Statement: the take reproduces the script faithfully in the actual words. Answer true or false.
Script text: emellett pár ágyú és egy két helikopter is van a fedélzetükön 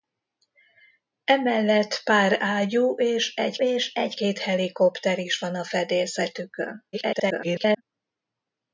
false